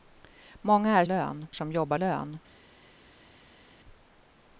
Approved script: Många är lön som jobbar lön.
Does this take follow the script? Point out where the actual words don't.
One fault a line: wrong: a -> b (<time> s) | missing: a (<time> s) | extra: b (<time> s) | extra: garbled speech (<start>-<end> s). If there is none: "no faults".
no faults